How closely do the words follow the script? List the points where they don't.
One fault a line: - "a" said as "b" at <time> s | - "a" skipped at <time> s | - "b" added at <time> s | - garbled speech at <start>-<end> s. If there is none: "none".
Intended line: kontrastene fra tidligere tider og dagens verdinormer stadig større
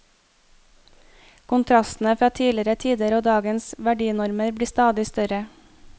- "blir" added at 4.5 s